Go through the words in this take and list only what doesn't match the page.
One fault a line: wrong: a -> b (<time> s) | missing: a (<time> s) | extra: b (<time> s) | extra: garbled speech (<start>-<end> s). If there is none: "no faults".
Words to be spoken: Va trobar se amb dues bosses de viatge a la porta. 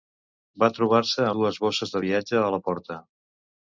missing: amb (1.3 s)